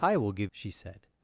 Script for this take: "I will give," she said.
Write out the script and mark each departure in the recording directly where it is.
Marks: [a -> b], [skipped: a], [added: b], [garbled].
"I will give," she said.